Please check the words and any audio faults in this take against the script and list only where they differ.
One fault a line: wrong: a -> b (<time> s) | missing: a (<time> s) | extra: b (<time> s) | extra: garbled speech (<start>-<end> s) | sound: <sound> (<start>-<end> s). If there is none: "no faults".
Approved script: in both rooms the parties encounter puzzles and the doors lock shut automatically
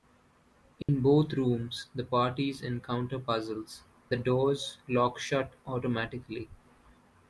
sound: dropout (0.8-0.9 s)
missing: and (3.8 s)